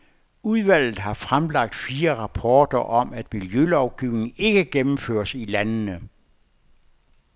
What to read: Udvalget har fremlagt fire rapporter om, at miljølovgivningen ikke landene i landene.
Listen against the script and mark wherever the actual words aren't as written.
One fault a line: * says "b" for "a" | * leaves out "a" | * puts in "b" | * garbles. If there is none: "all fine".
* says "gennemføres" for "landene"